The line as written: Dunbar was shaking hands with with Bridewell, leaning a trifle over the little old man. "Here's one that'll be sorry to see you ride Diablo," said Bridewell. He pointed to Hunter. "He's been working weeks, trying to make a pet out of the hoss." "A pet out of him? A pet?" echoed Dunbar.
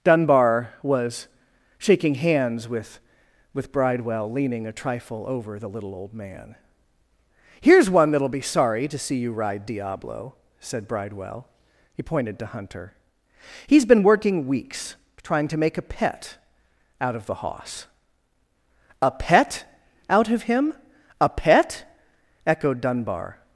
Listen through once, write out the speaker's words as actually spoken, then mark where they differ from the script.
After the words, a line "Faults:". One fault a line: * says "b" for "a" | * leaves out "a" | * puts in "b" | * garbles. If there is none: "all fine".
Dunbar was shaking hands with with Bridewell, leaning a trifle over the little old man. "Here's one that'll be sorry to see you ride Diablo," said Bridewell. He pointed to Hunter. "He's been working weeks, trying to make a pet out of the hoss." "A pet out of him? A pet?" echoed Dunbar.
Faults:
all fine